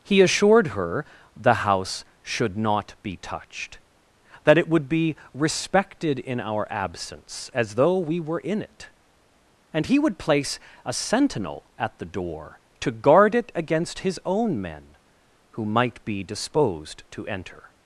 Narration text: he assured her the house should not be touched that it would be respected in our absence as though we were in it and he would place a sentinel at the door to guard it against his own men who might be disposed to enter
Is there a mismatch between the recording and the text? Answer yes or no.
no